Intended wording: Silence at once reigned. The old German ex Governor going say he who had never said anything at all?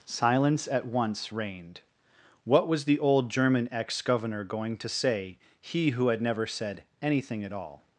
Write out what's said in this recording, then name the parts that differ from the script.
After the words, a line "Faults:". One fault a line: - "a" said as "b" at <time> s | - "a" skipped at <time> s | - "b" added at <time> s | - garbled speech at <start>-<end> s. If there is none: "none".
Silence at once reigned. What was the old German ex Governor going to say he who had never said anything at all?
Faults:
- "What was" added at 2.4 s
- "to" added at 4.8 s